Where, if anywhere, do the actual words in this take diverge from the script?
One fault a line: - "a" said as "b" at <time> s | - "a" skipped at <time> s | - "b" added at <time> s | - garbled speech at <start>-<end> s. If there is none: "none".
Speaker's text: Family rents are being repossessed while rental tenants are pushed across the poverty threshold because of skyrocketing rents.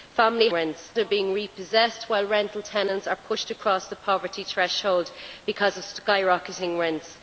none